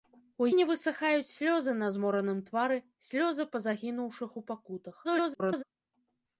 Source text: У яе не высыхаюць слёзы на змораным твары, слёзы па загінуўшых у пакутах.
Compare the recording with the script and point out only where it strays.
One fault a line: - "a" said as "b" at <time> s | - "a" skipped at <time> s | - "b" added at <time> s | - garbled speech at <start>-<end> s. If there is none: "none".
- "яе" skipped at 0.5 s
- garbled speech at 5.0-5.6 s